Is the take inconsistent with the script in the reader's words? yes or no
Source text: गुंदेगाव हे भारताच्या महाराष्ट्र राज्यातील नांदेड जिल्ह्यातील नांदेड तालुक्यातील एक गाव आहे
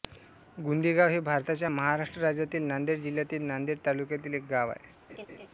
no